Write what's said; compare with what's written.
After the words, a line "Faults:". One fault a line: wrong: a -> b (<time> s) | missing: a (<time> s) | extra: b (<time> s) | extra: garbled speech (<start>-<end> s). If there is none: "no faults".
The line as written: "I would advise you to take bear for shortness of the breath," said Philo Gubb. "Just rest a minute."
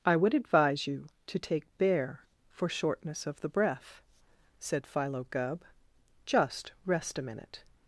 "I would advise you to take bear for shortness of the breath," said Philo Gubb. "Just rest a minute."
Faults:
no faults